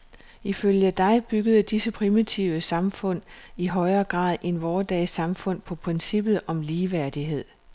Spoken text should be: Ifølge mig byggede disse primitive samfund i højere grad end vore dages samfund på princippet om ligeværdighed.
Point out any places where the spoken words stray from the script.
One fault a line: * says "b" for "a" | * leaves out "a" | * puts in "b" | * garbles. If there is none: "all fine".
* says "dig" for "mig"